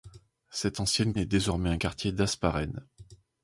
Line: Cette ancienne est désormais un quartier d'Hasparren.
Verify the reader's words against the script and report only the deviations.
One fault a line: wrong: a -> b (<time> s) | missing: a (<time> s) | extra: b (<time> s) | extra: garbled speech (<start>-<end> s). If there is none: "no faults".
no faults